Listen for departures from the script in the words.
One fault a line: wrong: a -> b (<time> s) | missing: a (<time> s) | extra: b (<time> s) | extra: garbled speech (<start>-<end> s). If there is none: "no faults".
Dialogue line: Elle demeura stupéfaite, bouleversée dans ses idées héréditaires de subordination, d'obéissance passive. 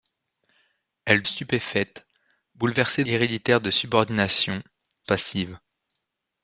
missing: demeura (1.2 s)
missing: dans ses idées (3.0 s)
missing: d'obéissance (4.6 s)